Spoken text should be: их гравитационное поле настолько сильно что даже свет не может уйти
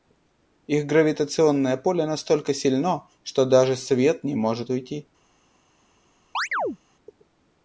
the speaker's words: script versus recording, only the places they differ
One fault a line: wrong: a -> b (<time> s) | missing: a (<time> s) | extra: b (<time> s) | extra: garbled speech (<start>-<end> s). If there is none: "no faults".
no faults